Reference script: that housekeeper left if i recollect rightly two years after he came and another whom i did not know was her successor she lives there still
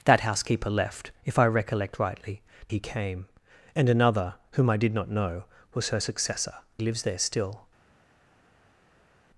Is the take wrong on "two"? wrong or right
wrong